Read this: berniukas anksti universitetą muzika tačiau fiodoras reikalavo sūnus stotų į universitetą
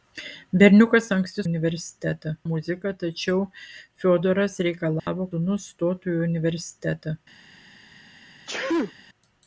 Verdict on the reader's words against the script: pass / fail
pass